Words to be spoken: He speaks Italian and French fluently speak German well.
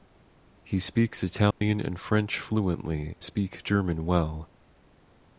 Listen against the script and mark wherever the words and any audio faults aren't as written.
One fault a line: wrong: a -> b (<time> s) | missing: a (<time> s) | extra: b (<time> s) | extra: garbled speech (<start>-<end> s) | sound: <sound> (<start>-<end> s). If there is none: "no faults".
sound: dropout (1.5-1.6 s)